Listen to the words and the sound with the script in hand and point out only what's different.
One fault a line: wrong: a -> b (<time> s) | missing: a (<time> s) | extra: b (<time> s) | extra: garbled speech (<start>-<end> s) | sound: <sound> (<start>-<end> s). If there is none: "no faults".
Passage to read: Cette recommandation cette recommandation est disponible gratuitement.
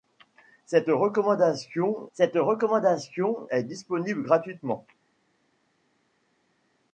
no faults